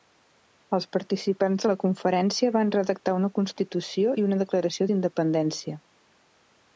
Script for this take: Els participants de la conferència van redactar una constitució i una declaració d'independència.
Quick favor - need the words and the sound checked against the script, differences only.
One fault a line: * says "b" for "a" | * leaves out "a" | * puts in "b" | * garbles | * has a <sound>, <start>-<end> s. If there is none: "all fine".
all fine